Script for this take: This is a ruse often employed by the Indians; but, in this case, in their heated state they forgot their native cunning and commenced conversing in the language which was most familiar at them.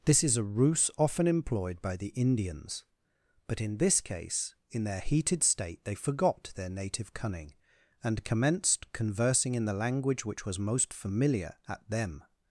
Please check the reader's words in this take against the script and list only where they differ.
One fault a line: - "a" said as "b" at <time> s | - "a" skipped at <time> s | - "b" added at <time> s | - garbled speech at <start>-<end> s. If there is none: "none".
none